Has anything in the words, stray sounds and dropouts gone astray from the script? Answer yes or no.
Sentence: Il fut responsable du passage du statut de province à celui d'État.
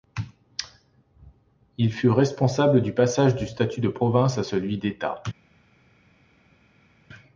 no